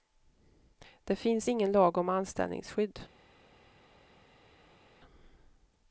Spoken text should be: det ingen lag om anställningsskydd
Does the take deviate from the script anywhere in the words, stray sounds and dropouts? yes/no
yes